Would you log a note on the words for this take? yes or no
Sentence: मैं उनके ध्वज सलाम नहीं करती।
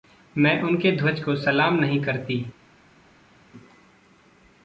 yes